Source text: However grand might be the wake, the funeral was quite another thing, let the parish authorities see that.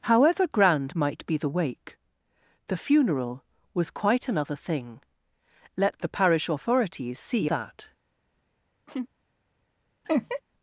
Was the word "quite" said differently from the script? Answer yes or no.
no